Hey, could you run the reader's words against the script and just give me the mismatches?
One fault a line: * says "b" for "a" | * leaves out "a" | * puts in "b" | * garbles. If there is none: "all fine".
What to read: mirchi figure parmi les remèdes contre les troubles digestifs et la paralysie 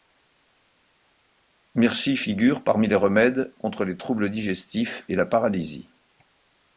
all fine